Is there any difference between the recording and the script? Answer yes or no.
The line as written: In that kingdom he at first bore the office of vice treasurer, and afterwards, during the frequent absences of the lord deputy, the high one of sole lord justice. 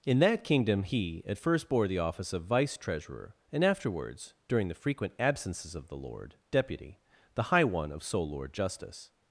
no